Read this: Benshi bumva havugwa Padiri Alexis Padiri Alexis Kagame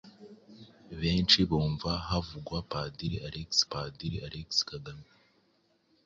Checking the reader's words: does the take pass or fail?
pass